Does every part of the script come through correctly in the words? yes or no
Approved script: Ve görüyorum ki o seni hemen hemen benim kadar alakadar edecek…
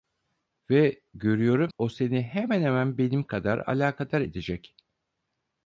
no